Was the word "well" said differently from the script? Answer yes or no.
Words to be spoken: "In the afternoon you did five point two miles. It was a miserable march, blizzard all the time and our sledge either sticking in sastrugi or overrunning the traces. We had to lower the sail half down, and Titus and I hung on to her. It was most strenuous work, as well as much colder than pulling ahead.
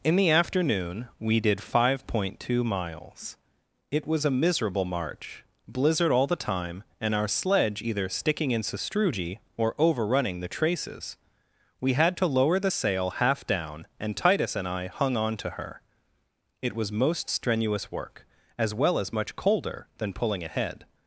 no